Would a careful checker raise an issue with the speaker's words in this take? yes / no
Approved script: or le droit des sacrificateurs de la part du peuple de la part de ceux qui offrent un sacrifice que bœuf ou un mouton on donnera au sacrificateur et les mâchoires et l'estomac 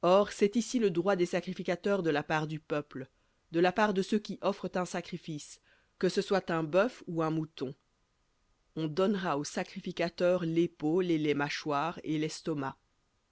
yes